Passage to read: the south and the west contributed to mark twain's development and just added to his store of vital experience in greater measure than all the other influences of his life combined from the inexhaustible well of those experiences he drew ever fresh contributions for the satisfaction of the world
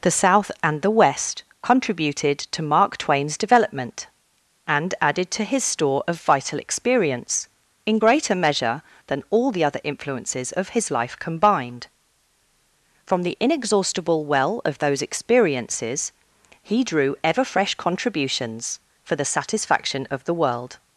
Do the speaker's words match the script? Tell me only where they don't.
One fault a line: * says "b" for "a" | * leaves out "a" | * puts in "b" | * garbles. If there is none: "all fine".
* leaves out "just"